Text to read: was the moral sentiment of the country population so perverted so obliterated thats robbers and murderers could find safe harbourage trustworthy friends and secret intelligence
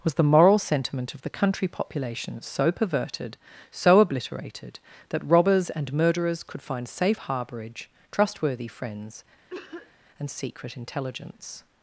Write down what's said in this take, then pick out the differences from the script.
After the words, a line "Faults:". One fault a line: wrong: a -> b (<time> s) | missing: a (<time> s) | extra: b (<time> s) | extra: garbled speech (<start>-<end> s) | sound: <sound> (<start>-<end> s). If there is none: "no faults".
was the moral sentiment of the country population so perverted so obliterated that robbers and murderers could find safe harbourage trustworthy friends and secret intelligence
Faults:
wrong: thats -> that (5.1 s)
sound: cough (9.5-9.9 s)